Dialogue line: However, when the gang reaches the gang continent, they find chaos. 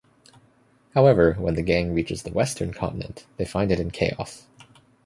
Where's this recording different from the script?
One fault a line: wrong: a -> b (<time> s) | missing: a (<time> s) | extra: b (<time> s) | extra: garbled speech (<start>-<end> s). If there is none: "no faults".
wrong: gang -> western (2.3 s)
extra: it in (3.7 s)